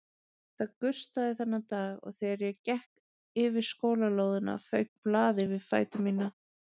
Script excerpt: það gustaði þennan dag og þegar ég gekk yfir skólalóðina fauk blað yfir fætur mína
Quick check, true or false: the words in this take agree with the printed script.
true